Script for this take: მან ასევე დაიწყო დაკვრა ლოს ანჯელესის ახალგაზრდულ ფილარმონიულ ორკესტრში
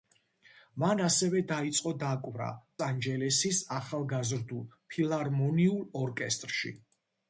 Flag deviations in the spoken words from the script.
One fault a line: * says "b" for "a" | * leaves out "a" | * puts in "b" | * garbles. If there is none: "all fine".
* leaves out "ლოს"